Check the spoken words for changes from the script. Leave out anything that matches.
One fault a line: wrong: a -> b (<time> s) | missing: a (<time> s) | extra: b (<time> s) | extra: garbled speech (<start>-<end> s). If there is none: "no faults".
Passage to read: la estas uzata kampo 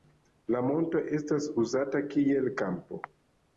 extra: monto (0.7 s)
extra: kiel (2.1 s)